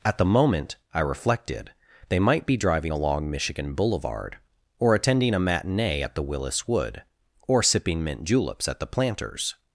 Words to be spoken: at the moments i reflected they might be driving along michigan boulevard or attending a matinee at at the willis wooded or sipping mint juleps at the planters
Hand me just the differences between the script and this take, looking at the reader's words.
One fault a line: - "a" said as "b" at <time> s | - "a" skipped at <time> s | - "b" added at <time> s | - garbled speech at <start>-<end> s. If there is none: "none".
- "moments" said as "moment" at 0.2 s
- "at" skipped at 6.2 s
- "wooded" said as "wood" at 6.7 s